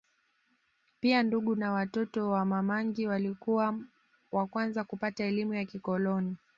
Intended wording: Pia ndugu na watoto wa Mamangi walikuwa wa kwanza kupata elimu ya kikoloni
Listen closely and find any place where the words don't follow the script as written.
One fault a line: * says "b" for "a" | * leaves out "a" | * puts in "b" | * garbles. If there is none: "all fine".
all fine